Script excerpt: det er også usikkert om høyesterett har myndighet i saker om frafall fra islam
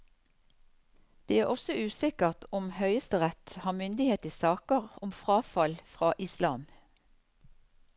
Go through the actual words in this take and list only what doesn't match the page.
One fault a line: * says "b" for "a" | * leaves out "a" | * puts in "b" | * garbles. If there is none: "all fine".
all fine